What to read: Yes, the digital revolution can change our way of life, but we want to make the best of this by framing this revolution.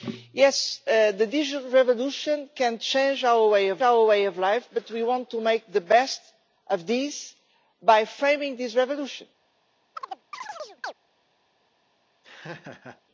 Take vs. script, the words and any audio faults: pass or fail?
fail